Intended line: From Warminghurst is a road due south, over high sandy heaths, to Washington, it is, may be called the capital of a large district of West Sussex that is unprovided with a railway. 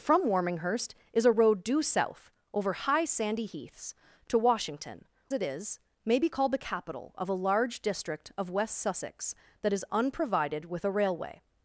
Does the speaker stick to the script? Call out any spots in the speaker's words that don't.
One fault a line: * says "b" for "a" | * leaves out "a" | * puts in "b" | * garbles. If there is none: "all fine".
all fine